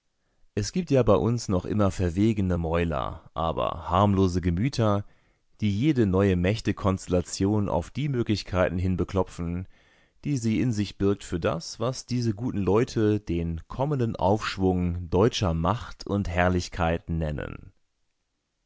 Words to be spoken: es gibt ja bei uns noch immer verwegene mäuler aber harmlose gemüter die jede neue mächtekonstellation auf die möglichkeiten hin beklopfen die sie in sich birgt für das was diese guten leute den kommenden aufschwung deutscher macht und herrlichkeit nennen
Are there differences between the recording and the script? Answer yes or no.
no